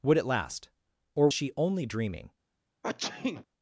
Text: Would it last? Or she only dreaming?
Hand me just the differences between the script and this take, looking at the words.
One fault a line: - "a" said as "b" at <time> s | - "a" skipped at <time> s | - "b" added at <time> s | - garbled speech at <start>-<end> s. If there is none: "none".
none